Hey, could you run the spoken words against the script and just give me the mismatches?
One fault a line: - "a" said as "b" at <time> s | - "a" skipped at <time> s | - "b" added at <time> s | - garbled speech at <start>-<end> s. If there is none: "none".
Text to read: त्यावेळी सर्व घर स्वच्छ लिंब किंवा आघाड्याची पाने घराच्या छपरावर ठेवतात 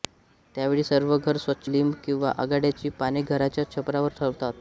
none